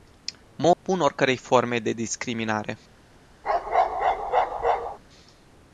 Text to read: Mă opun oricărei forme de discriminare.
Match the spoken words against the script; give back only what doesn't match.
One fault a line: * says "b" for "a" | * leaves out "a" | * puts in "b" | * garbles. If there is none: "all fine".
all fine